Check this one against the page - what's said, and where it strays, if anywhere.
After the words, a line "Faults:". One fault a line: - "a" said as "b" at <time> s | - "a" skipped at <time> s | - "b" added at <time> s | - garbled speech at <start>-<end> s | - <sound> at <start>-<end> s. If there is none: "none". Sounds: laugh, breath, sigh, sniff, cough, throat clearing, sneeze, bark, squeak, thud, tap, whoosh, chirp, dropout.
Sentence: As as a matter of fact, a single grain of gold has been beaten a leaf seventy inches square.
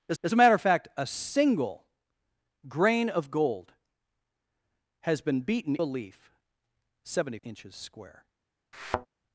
As as a matter of fact, a single grain of gold has been beaten a leaf seventy inches square.
Faults:
- thud at 8.7-9.1 s